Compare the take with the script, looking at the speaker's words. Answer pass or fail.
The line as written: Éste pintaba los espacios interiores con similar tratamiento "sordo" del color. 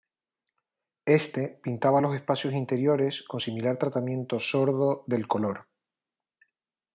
pass